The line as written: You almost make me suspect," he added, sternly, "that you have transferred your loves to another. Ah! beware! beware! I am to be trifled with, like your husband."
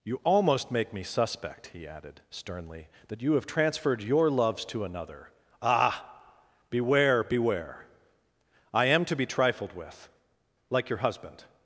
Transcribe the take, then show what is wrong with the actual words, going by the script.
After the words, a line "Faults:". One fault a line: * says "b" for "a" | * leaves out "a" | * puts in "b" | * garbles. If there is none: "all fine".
You almost make me suspect," he added, sternly, "that you have transferred your loves to another. Ah! beware! beware! I am to be trifled with, like your husband."
Faults:
all fine